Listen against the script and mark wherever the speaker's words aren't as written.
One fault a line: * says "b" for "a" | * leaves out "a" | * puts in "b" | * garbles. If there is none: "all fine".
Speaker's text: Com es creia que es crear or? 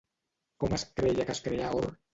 all fine